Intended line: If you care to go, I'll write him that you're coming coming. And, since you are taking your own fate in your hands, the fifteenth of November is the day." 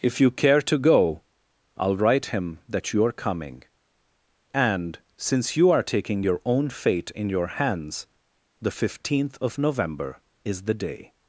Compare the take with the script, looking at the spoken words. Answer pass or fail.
fail